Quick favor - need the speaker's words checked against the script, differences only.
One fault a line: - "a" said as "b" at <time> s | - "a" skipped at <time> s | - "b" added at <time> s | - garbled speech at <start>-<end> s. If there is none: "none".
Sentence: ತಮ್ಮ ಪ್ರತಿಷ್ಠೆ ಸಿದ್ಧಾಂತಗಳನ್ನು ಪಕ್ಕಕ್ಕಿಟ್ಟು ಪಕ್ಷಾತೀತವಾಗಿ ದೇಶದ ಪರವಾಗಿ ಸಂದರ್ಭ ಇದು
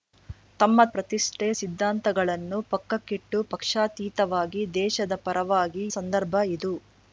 none